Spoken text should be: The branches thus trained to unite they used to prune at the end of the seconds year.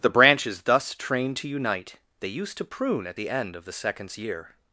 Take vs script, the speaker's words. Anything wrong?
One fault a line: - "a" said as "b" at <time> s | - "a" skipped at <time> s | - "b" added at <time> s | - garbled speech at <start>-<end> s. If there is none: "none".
none